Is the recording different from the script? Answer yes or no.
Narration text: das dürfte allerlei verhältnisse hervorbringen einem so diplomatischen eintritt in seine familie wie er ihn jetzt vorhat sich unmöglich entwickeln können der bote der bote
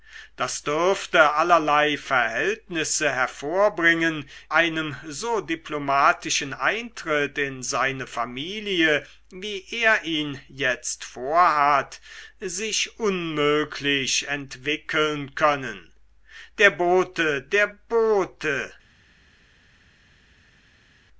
no